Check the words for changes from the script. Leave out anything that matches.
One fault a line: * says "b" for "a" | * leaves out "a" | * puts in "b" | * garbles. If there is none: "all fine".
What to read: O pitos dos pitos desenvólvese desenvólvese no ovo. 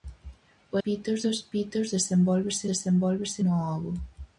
all fine